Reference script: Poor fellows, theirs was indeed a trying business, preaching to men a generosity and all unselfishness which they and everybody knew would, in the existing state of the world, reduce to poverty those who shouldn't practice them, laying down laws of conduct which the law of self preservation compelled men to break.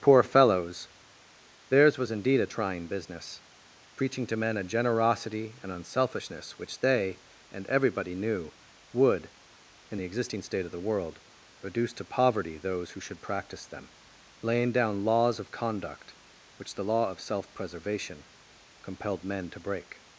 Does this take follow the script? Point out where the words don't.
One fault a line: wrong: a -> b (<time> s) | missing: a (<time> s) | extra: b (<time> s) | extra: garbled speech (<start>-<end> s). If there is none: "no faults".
missing: all (5.7 s)
wrong: shouldn't -> should (13.0 s)